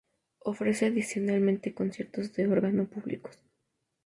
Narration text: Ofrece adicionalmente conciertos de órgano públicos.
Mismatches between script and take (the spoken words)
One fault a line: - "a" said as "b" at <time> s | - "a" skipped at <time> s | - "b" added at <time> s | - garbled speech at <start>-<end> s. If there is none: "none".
none